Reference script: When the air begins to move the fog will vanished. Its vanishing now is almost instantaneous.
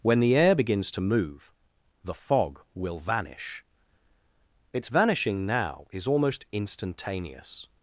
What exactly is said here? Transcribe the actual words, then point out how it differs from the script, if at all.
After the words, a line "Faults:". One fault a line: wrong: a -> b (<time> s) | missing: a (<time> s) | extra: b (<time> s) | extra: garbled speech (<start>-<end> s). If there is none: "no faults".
When the air begins to move the fog will vanish. Its vanishing now is almost instantaneous.
Faults:
wrong: vanished -> vanish (3.0 s)